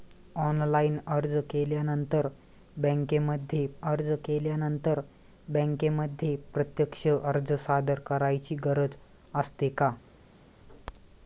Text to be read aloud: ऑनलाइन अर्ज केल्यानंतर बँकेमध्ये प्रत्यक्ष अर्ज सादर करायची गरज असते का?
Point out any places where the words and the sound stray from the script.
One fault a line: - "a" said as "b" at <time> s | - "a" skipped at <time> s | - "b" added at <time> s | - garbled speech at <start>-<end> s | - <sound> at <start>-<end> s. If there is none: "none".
- "अर्ज केल्यानंतर बँकेमध्ये" added at 3.8 s